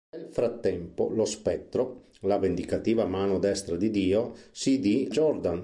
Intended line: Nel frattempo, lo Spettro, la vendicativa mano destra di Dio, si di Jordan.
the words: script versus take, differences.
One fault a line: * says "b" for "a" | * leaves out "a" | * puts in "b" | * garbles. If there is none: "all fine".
all fine